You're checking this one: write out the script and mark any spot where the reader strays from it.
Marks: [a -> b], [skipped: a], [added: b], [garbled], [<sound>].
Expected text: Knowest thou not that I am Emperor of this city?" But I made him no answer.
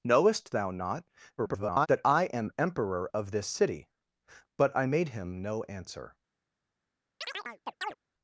Knowest thou not [garbled] that I am Emperor of this city?" But I made him no answer. [chirp]